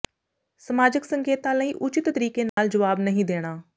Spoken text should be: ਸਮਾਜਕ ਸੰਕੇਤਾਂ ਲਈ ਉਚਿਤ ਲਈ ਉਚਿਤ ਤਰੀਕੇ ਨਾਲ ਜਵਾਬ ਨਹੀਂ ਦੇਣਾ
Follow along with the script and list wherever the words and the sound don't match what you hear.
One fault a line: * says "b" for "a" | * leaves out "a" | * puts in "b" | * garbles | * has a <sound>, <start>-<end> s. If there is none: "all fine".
* leaves out "ਲਈ ਉਚਿਤ"
* has a dropout, 2.5-2.6 s